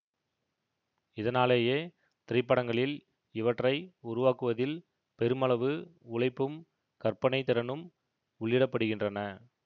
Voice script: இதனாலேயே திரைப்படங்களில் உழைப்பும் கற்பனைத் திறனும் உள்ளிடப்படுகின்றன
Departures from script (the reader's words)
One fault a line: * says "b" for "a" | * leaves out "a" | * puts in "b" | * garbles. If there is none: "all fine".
* puts in "இவற்றை உருவாக்குவதில் பெருமளவு"